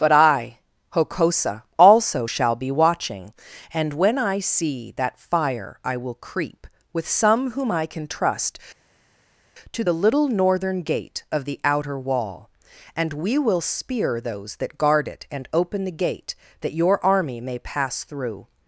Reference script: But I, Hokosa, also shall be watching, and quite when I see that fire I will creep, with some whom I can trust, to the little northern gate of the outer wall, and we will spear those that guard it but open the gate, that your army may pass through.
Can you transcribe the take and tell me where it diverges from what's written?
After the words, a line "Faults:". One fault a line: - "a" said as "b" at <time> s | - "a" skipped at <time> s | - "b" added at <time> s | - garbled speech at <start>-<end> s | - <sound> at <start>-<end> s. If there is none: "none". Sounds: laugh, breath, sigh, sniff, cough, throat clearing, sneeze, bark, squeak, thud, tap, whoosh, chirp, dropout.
But I, Hokosa, also shall be watching, and when I see that fire I will creep, with some whom I can trust, to the little northern gate of the outer wall, and we will spear those that guard it and open the gate, that your army may pass through.
Faults:
- "quite" skipped at 3.9 s
- "but" said as "and" at 15.3 s